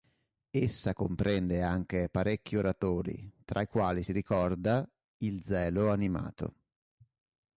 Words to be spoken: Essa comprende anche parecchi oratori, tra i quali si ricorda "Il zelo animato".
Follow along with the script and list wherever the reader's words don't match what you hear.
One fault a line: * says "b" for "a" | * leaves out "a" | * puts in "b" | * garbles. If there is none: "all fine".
all fine